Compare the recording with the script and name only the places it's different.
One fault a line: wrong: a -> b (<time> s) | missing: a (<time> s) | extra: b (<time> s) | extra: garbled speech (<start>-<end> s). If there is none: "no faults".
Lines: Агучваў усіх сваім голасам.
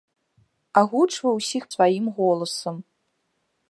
no faults